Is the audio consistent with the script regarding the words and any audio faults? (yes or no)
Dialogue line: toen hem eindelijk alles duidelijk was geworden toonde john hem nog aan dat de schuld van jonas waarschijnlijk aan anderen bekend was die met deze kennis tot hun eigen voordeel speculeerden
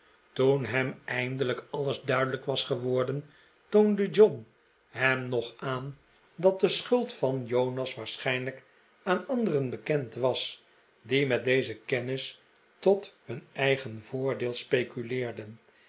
yes